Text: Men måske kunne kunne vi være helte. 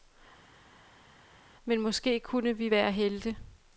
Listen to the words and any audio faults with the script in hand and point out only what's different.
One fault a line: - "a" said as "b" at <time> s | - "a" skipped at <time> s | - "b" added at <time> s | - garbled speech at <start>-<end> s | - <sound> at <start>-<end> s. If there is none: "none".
- "kunne" skipped at 2.6 s